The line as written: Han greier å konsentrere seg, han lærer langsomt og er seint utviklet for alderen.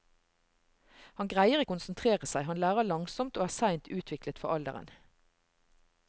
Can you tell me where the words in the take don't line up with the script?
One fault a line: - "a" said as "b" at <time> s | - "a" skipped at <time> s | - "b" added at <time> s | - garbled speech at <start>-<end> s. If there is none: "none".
none